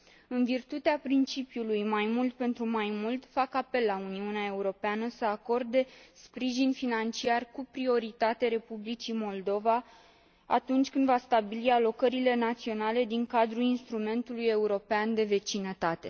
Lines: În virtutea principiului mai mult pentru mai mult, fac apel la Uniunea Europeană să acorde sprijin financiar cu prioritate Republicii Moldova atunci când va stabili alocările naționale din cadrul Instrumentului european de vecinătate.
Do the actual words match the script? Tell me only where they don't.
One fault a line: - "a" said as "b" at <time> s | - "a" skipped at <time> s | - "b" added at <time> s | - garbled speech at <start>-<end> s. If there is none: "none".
none